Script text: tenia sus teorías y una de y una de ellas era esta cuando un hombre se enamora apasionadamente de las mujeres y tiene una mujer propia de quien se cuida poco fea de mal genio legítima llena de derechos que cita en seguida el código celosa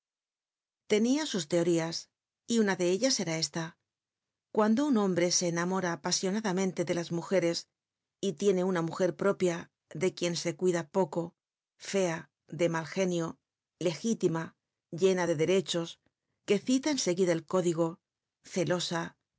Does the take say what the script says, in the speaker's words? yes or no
no